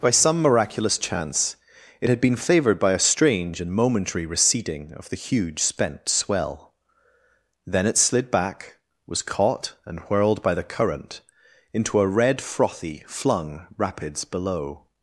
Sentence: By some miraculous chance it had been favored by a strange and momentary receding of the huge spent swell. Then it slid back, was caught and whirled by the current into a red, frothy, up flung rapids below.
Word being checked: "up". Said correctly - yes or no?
no